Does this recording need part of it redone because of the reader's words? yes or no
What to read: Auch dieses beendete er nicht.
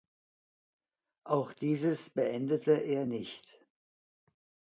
no